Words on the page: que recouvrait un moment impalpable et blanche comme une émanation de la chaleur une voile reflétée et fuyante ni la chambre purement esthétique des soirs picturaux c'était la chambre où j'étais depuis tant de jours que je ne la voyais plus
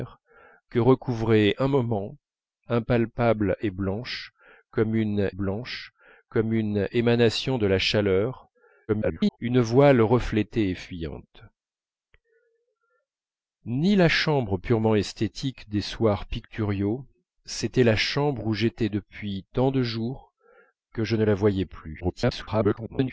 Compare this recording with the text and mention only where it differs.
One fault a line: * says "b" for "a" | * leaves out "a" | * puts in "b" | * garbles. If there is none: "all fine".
* puts in "blanche comme une"
* garbles
* garbles